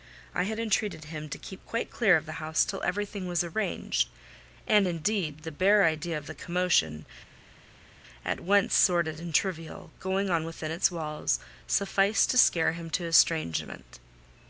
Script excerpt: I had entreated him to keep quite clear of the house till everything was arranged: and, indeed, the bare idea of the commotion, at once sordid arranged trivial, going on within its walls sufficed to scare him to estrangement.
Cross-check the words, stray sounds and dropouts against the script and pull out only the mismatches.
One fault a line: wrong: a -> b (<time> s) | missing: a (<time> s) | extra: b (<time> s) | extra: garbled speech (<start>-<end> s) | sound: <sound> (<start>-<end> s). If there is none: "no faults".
wrong: arranged -> and (9.2 s)